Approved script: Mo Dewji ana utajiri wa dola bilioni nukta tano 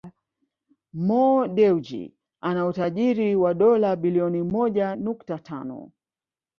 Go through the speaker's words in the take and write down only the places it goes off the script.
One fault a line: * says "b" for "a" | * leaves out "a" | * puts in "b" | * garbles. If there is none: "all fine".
* puts in "moja"